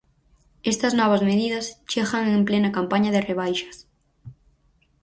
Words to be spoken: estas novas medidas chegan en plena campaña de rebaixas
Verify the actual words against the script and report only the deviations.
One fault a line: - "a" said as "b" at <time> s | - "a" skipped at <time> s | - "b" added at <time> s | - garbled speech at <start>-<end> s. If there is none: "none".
none